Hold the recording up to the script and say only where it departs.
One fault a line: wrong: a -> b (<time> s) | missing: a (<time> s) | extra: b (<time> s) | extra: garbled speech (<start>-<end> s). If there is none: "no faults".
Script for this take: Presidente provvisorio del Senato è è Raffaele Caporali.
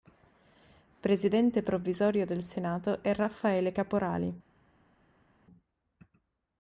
missing: è (3.1 s)